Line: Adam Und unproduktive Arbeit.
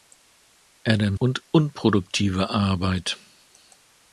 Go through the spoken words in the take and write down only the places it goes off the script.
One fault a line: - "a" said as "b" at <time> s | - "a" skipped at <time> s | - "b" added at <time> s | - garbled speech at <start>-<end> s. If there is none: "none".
none